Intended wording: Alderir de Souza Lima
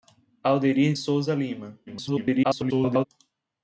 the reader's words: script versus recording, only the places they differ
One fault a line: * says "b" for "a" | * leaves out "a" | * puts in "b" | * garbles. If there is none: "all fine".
* leaves out "de"
* garbles